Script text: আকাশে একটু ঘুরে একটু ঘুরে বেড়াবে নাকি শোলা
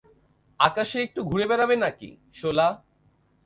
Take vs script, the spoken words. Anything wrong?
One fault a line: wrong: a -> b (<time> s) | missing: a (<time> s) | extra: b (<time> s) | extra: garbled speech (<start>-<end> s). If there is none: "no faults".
missing: একটু ঘুরে (1.4 s)